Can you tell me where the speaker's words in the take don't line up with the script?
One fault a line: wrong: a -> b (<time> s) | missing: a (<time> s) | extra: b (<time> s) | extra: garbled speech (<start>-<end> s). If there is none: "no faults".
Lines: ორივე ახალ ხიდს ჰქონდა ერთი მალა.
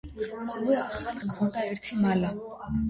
missing: ხიდს (1.2 s)